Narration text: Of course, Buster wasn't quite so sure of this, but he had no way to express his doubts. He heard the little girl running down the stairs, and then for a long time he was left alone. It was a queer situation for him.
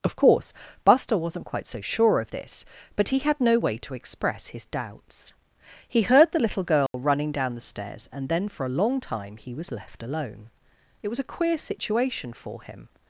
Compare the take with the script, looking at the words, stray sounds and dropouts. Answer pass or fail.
fail